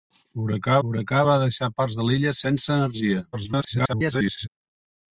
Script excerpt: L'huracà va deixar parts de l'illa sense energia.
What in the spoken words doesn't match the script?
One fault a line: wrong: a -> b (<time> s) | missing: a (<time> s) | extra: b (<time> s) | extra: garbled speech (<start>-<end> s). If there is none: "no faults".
extra: l'huracà (0.8 s)
extra: garbled speech (3.3-4.5 s)